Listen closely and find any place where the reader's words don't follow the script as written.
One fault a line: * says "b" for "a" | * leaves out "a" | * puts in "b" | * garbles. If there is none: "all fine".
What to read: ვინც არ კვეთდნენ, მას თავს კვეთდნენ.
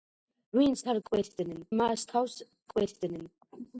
all fine